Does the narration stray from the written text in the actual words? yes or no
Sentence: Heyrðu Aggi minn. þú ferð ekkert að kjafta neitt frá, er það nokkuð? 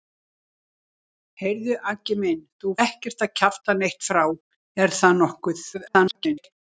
yes